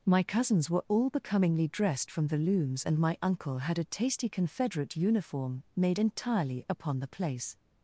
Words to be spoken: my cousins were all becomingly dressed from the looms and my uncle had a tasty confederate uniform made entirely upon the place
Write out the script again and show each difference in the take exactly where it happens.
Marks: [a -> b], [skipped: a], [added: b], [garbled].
my cousins were all becomingly dressed from the looms and my uncle had a tasty confederate uniform made entirely upon the place